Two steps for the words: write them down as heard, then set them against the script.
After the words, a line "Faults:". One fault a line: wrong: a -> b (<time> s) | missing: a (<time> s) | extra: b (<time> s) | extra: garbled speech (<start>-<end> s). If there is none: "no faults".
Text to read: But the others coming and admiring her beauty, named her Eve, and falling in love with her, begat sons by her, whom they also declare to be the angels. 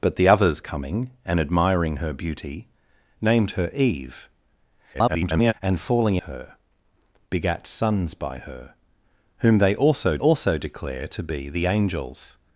But the others coming and admiring her beauty, named her Eve, [garbled] and falling her, begat sons by her, whom they also also declare to be the angels.
Faults:
extra: garbled speech (4.9-5.5 s)
missing: in love with (6.2 s)
extra: also (10.2 s)